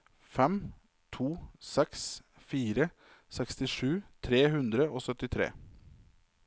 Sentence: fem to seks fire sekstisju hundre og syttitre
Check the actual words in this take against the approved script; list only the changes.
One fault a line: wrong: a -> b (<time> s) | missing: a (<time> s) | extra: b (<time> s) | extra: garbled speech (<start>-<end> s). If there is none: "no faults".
extra: tre (4.2 s)